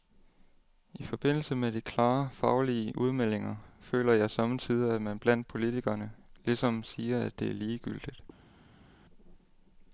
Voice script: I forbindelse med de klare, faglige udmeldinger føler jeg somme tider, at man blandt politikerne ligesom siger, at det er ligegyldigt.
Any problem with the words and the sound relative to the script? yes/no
no